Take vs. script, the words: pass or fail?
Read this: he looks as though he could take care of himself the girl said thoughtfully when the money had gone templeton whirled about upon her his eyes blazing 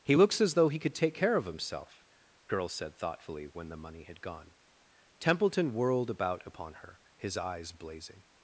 fail